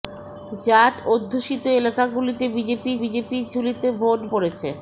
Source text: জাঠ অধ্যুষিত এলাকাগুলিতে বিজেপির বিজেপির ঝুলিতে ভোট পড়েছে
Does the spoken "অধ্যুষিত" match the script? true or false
true